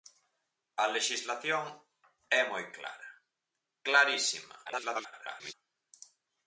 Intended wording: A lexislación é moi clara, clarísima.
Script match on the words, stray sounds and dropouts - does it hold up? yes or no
no